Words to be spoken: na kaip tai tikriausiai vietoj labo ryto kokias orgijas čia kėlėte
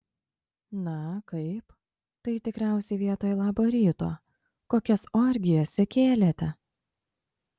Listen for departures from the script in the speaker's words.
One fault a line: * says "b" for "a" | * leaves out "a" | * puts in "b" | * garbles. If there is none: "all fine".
all fine